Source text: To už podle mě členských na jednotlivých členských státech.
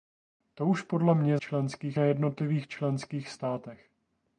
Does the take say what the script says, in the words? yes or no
yes